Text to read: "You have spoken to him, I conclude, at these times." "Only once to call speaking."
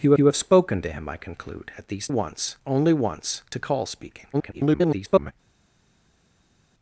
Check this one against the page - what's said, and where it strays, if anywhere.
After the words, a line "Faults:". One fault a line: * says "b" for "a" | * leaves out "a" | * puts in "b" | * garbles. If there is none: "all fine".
"You you have spoken to him, I conclude, at these once." "Only once to call speaking." [garbled]
Faults:
* puts in "you"
* says "once" for "times"
* garbles